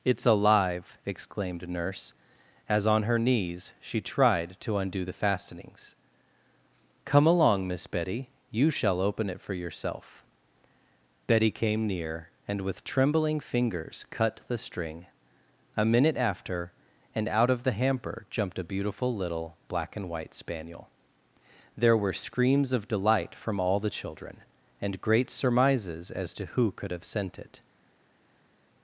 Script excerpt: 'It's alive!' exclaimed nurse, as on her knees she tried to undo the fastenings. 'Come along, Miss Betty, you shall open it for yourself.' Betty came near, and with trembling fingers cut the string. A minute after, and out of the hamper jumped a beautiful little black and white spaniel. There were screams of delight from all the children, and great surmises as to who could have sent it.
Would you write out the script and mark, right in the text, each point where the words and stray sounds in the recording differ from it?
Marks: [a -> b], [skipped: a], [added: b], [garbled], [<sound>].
'It's alive!' exclaimed nurse, as on her knees she tried to undo the fastenings. 'Come along, Miss Betty, you shall open it for yourself.' Betty came near, and with trembling fingers cut the string. A minute after, and out of the hamper jumped a beautiful little black and white spaniel. There were screams of delight from all the children, and great surmises as to who could have sent it.